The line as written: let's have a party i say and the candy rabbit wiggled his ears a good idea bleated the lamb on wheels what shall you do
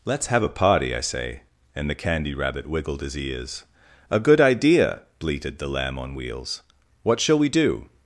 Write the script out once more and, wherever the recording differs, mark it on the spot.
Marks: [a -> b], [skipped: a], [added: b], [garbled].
let's have a party i say and the candy rabbit wiggled his ears a good idea bleated the lamb on wheels what shall [you -> we] do